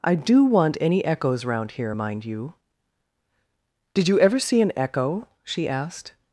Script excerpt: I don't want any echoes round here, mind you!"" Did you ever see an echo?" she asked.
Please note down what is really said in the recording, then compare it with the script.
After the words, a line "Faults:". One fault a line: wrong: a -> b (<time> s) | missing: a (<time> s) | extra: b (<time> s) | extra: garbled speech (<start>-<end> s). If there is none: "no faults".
I do want any echoes round here, mind you!"" Did you ever see an echo?" she asked.
Faults:
wrong: don't -> do (0.1 s)